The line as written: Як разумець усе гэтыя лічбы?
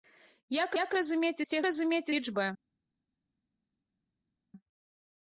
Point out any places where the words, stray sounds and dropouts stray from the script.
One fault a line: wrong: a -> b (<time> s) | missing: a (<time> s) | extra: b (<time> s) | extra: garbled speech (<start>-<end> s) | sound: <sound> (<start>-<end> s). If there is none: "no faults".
extra: як (0.8 s)
wrong: гэтыя -> разумець (1.7 s)